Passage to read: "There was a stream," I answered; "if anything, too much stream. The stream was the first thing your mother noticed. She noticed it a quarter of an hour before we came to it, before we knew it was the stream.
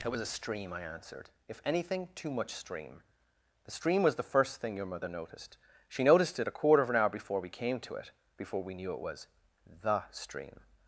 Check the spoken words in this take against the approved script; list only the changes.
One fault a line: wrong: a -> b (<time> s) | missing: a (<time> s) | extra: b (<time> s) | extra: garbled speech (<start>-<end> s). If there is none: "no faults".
wrong: There -> It (0.0 s)